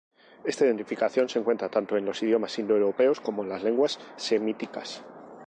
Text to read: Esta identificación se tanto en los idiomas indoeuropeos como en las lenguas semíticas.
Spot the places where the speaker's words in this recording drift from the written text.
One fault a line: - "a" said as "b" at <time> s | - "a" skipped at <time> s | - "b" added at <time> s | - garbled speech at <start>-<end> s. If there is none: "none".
- "encuentra" added at 1.4 s